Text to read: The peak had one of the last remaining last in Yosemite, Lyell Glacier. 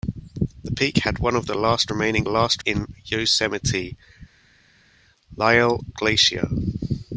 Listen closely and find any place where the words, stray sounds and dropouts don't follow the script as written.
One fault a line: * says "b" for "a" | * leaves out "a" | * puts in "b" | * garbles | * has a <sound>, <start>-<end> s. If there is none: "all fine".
all fine